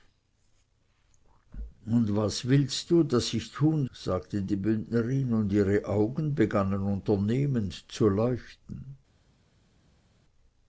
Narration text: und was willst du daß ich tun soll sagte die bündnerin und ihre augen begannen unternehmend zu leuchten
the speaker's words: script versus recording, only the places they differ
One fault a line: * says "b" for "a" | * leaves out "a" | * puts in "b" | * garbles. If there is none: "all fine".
* leaves out "soll"